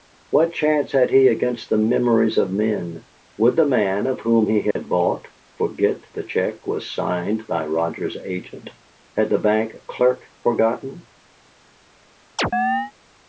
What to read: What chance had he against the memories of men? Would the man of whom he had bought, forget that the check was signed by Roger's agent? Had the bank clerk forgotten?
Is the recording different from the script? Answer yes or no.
yes